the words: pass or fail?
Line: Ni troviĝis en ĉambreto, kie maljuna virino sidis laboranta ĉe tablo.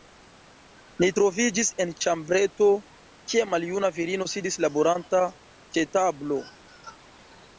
pass